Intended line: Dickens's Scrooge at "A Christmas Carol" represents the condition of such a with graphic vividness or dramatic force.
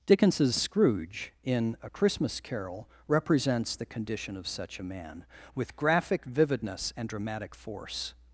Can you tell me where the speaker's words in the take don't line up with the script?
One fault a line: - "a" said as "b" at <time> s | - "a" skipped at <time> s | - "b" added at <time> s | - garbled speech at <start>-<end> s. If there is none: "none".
- "at" said as "in" at 1.4 s
- "man" added at 4.8 s
- "or" said as "and" at 7.0 s